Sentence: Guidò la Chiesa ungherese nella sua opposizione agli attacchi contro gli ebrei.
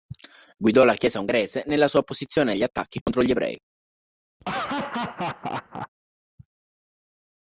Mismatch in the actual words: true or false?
false